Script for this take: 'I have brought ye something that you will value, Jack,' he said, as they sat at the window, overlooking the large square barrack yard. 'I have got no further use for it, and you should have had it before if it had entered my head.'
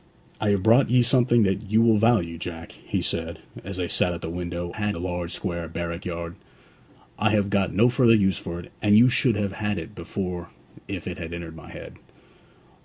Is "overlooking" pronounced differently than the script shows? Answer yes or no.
yes